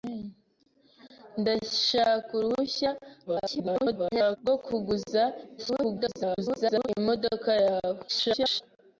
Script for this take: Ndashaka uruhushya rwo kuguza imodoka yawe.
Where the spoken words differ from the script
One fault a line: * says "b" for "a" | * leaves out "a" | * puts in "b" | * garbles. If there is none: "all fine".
* garbles
* garbles
* garbles